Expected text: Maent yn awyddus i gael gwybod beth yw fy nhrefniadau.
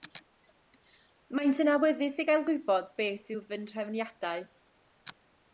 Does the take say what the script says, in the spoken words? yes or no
yes